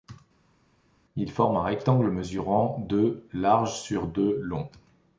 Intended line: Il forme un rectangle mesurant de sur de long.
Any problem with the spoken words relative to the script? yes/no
yes